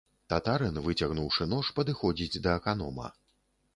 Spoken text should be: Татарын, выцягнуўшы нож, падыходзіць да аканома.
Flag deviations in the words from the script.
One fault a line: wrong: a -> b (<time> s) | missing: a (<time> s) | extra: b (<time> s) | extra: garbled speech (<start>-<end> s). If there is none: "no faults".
no faults